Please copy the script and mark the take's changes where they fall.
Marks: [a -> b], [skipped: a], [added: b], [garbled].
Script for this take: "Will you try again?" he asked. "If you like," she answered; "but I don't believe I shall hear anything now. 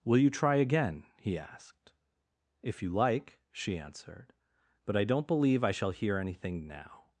"Will you try again?" he asked. "If you like," she answered; "but I don't believe I shall hear anything now.